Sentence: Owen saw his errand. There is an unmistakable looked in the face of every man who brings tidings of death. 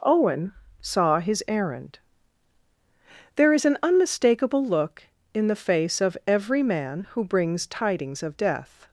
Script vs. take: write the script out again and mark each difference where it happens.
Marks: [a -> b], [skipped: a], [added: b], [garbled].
Owen saw his errand. There is an unmistakable [looked -> look] in the face of every man who brings tidings of death.